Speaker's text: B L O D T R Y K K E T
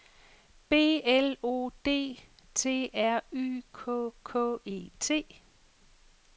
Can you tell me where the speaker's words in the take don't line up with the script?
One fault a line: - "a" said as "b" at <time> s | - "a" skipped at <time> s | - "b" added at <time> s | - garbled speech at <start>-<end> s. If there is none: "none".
none